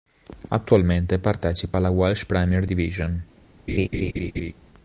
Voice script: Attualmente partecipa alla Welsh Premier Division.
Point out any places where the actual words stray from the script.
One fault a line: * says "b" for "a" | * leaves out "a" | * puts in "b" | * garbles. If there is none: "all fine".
all fine